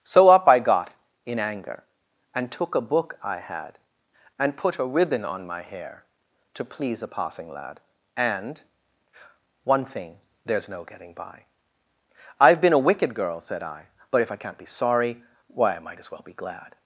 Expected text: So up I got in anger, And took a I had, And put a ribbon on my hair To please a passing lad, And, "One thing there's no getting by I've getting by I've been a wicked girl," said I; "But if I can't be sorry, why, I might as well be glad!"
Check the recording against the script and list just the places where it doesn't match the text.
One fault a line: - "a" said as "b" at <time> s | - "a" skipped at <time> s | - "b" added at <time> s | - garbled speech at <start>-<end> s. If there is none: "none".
- "book" added at 2.8 s
- "getting by I've" skipped at 12.6 s